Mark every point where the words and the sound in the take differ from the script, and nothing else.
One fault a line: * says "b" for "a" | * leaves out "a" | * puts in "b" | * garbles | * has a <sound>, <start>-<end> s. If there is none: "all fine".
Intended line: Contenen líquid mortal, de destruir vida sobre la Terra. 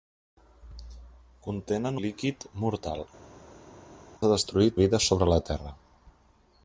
all fine